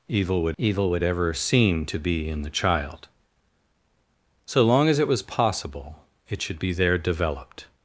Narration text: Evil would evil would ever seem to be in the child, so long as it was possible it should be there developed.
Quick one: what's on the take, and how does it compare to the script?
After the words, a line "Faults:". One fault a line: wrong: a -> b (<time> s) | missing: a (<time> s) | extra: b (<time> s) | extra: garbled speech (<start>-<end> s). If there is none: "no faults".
Evil would evil would ever seem to be in the child, so long as it was possible it should be there developed.
Faults:
no faults